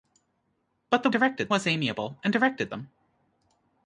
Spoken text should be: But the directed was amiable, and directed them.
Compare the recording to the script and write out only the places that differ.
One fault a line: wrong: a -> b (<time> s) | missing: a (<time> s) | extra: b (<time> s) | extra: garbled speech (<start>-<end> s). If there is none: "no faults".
no faults